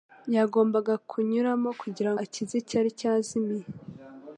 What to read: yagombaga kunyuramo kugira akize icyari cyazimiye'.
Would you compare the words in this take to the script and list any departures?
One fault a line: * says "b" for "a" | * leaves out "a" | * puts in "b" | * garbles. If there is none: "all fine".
all fine